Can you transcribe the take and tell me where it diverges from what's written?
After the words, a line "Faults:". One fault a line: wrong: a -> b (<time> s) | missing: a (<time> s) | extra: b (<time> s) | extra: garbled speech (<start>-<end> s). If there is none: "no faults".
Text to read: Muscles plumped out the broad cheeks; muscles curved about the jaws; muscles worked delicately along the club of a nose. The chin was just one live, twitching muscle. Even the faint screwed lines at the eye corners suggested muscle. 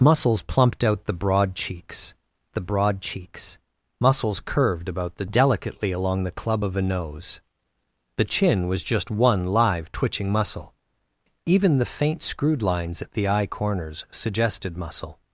Muscles plumped out the broad cheeks the broad cheeks; muscles curved about the delicately along the club of a nose. The chin was just one live, twitching muscle. Even the faint screwed lines at the eye corners suggested muscle.
Faults:
extra: the broad cheeks (2.5 s)
missing: jaws muscles worked (5.2 s)